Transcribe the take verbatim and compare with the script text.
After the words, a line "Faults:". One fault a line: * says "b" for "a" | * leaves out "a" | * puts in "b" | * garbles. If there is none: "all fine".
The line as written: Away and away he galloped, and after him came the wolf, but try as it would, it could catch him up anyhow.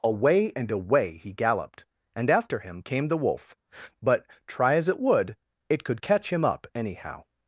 Away and away he galloped, and after him came the wolf, but try as it would, it could catch him up anyhow.
Faults:
all fine